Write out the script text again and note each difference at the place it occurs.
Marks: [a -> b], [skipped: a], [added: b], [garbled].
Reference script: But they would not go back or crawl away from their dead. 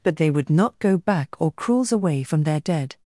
But they would not go back or [crawl -> crawls] away from their dead.